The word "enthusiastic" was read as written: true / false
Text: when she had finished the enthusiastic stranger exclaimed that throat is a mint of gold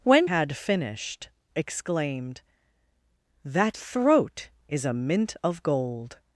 false